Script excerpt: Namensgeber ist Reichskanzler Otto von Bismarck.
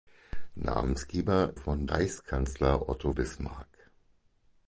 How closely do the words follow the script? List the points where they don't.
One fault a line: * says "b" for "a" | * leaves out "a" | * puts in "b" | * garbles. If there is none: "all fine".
* says "von" for "ist"
* leaves out "von"